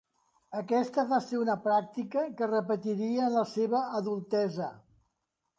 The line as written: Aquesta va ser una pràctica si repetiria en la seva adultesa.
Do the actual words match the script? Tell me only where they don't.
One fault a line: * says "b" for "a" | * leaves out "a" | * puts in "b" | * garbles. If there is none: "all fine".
* says "que" for "si"